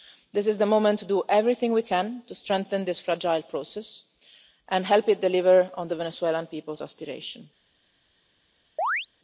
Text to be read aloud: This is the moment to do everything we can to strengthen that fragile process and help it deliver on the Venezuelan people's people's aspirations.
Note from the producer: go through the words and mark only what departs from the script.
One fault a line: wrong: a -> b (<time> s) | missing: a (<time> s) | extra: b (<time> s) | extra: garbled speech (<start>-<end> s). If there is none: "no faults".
wrong: that -> this (2.8 s)
missing: people's (6.8 s)